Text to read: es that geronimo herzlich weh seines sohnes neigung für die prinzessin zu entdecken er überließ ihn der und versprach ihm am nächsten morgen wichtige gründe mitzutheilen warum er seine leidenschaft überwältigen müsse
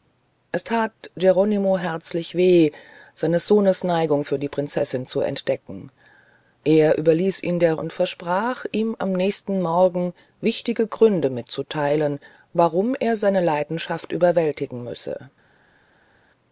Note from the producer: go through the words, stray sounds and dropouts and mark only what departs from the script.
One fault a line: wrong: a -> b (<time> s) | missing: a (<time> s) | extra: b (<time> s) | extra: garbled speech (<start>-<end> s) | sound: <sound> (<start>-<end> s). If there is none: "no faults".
no faults